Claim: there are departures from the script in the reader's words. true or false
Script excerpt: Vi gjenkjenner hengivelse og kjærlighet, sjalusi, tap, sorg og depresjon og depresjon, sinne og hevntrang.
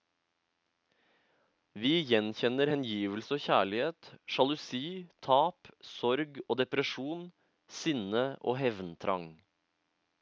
true